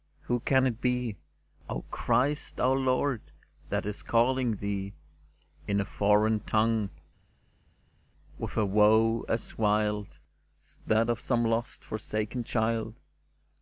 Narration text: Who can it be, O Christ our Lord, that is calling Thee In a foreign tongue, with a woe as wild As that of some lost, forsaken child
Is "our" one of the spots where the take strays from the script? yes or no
no